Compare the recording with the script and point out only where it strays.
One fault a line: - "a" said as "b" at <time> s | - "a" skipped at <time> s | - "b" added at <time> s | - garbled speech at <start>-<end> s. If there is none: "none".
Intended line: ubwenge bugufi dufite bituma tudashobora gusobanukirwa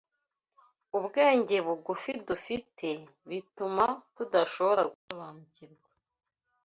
none